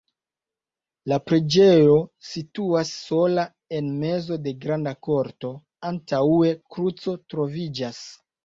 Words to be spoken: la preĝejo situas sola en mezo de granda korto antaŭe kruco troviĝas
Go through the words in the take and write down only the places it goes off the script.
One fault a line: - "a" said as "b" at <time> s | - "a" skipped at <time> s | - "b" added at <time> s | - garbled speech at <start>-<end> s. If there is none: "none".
none